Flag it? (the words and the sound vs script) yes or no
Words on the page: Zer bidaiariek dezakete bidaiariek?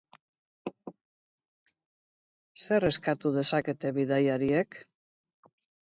yes